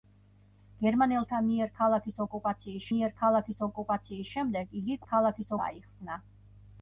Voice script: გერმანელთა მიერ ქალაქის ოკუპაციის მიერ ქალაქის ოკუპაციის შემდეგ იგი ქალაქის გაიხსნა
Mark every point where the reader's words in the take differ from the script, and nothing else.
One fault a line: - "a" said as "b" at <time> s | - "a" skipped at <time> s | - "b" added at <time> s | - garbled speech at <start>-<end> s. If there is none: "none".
none